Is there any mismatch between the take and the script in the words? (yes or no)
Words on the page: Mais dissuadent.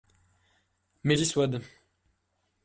no